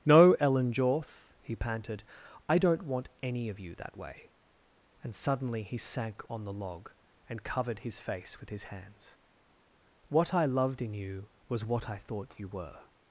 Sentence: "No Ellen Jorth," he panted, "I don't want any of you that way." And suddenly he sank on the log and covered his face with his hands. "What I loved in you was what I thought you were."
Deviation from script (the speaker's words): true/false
false